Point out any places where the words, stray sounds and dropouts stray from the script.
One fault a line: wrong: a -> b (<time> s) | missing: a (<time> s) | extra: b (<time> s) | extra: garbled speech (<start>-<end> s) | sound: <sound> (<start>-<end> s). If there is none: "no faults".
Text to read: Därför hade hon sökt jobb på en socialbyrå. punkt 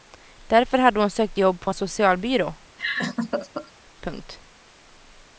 sound: laugh (2.8-3.7 s)